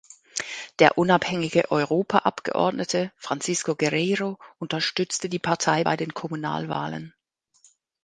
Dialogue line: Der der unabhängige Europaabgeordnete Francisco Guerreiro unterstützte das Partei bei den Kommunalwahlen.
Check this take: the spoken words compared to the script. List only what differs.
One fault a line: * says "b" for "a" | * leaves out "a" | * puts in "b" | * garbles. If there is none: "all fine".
* leaves out "der"
* says "die" for "das"